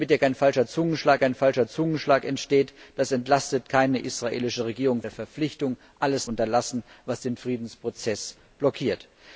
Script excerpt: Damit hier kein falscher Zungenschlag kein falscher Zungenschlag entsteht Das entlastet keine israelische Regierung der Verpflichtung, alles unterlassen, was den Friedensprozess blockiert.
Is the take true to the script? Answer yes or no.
yes